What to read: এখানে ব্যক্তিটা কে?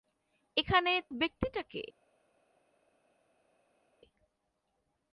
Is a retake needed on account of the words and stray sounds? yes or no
no